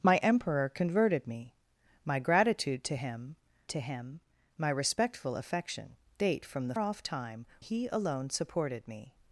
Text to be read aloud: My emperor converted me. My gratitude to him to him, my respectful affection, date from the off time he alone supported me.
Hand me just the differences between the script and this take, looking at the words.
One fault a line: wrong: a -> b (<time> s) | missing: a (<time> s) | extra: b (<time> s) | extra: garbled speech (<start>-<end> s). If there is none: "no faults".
no faults